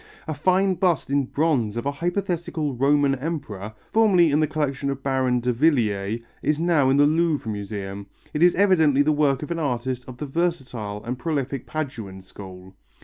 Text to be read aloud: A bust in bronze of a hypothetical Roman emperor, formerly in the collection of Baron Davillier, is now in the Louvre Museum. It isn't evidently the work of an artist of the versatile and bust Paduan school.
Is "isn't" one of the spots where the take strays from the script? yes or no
yes